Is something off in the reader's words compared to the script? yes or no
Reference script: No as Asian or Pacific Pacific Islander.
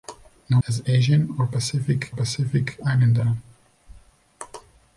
no